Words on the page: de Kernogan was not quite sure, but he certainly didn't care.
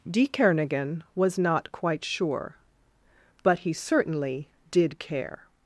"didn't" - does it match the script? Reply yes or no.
no